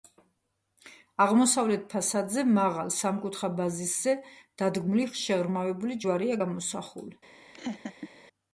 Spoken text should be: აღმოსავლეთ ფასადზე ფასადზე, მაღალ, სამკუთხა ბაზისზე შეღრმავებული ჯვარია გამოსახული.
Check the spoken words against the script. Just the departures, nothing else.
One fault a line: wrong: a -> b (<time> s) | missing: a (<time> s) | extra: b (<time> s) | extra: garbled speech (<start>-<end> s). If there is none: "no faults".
missing: ფასადზე (2.5 s)
extra: დადგმული (4.6 s)